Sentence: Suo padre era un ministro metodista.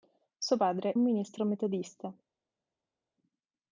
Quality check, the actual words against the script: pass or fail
fail